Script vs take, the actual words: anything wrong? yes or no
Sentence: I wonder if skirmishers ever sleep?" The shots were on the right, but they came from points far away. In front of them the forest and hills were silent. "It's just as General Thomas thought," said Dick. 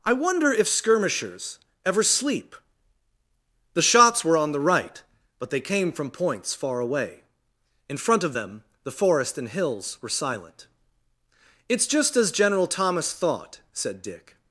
no